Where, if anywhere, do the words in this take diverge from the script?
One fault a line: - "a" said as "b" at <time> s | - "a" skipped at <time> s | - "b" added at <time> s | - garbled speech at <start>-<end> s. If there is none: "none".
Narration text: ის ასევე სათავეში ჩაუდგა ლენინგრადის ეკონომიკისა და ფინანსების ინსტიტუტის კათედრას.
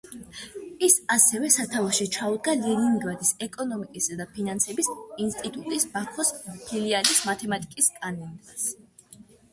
- "ბაქოს ფილიალის მათემატიკის" added at 6.0 s